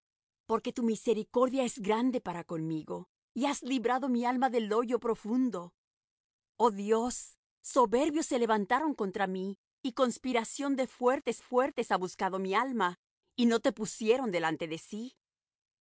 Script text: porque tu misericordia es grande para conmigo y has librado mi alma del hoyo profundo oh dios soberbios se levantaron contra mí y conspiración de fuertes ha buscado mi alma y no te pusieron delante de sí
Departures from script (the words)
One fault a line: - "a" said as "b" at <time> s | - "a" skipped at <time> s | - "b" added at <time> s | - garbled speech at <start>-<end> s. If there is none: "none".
- "fuertes" added at 11.4 s